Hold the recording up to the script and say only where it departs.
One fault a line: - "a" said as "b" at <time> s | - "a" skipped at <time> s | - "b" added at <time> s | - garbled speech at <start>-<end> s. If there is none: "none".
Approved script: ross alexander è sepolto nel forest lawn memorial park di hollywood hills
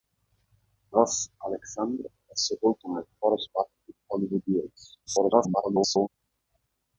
- "lawn memorial" skipped at 3.5 s
- garbled speech at 5.1-6.1 s